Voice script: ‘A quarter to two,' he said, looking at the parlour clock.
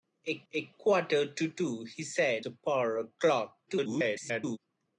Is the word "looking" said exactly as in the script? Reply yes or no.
no